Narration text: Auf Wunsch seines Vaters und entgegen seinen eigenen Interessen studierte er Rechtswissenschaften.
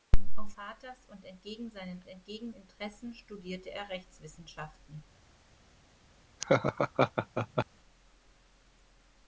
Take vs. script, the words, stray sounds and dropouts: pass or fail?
fail